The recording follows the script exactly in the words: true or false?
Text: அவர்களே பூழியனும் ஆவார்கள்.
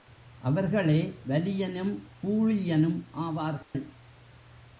false